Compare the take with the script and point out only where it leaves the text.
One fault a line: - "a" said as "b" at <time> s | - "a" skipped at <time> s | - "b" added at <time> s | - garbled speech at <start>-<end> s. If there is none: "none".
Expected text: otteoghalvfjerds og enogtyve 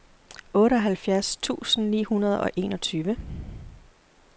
- "tusind ni hundrede" added at 1.4 s